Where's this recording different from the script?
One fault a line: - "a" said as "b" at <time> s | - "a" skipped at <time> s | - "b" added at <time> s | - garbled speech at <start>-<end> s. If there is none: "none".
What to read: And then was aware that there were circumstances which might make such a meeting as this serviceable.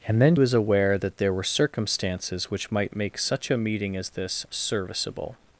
none